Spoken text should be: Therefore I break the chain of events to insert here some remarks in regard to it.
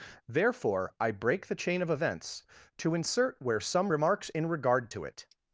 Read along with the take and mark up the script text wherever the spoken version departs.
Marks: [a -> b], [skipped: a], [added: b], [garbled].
Therefore I break the chain of events to insert [here -> where] some remarks in regard to it.